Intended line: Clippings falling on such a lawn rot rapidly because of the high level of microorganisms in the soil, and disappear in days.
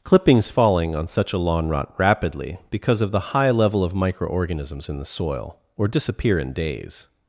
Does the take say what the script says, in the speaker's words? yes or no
no